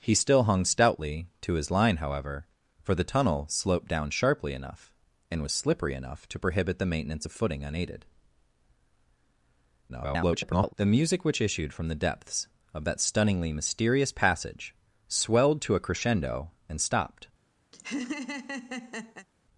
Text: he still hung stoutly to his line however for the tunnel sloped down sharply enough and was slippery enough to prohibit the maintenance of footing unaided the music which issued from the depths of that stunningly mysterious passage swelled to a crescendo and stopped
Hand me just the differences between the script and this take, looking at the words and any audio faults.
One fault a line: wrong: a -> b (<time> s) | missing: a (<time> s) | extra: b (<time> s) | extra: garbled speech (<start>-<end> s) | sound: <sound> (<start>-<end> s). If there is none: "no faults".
extra: garbled speech (9.9-10.7 s)
sound: laugh (17.7-19.3 s)